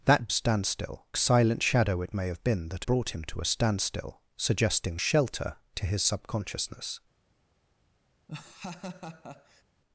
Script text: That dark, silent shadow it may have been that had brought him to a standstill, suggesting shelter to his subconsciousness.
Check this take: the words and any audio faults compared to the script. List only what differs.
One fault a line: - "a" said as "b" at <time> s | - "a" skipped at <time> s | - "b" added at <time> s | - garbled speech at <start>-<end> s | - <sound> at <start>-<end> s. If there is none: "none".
- "dark" said as "standstill" at 0.3 s
- "had" skipped at 2.8 s
- laugh at 8.3-9.6 s